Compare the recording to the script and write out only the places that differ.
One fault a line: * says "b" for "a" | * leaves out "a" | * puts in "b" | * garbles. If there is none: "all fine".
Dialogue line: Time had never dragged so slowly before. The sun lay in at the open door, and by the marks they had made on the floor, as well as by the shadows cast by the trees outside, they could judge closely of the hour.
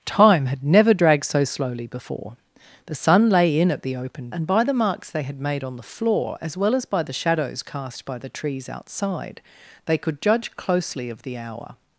* leaves out "door"